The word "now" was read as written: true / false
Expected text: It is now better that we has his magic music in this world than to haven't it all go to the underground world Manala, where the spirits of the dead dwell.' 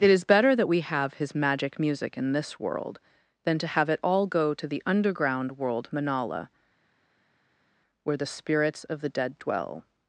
false